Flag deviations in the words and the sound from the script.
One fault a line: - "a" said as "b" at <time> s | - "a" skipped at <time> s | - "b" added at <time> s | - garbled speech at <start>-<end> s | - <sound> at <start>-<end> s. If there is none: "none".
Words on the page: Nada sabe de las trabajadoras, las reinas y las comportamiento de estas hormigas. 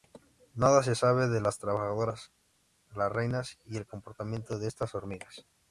- "se" added at 0.8 s
- "las" said as "el" at 3.8 s